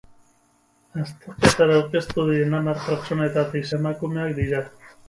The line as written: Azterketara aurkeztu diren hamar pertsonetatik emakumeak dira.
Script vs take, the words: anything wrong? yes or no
no